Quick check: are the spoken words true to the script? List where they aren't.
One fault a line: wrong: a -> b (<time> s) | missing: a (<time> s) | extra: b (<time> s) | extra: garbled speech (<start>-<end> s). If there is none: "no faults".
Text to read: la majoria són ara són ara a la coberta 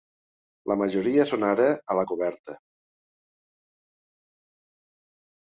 missing: són ara (1.7 s)